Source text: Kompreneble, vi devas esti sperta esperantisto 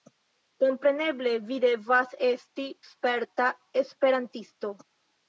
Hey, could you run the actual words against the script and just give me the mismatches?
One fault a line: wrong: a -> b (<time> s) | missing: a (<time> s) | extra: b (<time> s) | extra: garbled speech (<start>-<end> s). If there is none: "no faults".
no faults